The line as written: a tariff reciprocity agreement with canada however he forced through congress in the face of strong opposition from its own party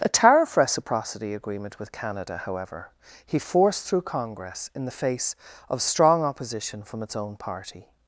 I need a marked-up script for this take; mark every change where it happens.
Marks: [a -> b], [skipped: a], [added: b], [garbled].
a tariff reciprocity agreement with canada however he forced through congress in the face of strong opposition from its own party